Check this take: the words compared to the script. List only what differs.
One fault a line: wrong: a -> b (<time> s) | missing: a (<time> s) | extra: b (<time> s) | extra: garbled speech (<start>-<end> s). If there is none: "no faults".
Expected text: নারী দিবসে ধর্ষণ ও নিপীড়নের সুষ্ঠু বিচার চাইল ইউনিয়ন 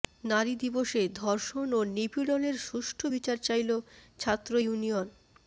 extra: ছাত্র (4.2 s)